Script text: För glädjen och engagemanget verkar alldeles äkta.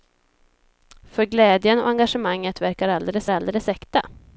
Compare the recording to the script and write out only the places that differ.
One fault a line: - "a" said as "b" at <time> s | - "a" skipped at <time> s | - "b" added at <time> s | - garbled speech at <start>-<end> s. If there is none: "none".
- "alldeles" added at 3.3 s